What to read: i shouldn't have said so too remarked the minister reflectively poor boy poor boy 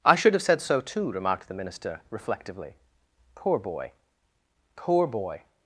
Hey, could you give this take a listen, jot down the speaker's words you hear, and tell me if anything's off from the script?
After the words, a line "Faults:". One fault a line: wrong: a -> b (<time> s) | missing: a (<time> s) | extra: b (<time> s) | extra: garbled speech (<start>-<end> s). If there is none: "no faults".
i should have said so too remarked the minister reflectively poor boy poor boy
Faults:
wrong: shouldn't -> should (0.1 s)